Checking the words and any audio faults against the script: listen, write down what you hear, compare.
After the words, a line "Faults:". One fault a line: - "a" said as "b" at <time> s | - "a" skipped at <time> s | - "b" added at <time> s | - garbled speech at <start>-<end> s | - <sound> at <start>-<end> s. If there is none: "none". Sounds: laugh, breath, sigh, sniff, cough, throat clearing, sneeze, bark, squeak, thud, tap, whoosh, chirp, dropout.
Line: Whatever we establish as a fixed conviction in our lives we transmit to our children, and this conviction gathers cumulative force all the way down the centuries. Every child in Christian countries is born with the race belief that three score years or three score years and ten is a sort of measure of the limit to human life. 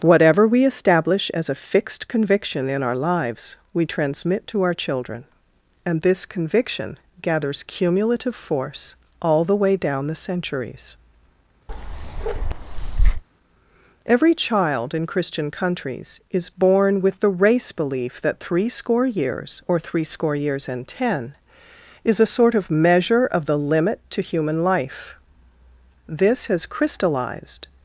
Whatever we establish as a fixed conviction in our lives we transmit to our children, and this conviction gathers cumulative force all the way down the centuries. Every child in Christian countries is born with the race belief that three score years or three score years and ten is a sort of measure of the limit to human life. This has crystallized
Faults:
- bark at 11.7-13.2 s
- "This has crystallized" added at 26.1 s